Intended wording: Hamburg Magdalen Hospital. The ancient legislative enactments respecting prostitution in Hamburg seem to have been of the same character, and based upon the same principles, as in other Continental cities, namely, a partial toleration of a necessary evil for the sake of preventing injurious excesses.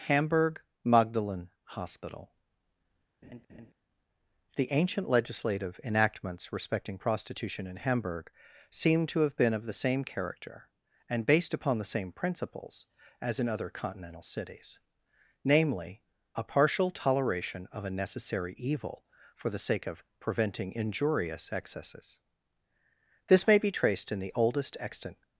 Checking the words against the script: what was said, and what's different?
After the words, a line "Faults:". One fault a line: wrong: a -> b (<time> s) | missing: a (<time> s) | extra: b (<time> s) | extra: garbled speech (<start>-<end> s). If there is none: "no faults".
Hamburg Magdalen Hospital. The ancient legislative enactments respecting prostitution in Hamburg seem to have been of the same character, and based upon the same principles, as in other Continental cities, namely, a partial toleration of a necessary evil for the sake of preventing injurious excesses. This may be traced in the oldest extant
Faults:
extra: This may be traced in the oldest extant (23.3 s)